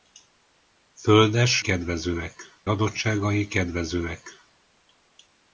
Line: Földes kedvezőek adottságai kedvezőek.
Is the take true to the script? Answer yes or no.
yes